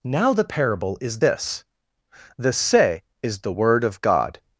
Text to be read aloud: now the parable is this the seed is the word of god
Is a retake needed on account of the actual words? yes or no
yes